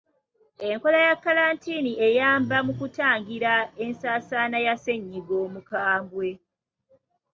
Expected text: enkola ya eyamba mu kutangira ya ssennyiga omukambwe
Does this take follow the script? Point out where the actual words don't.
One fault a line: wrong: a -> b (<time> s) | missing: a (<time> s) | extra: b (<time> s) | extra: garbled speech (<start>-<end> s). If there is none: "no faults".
extra: kkalantiini (1.2 s)
extra: ensaasaana (3.8 s)